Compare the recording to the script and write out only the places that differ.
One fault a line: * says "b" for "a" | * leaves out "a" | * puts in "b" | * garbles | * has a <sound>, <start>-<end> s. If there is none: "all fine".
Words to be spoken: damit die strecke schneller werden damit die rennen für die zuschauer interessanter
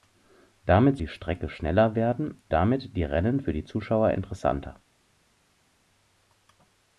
all fine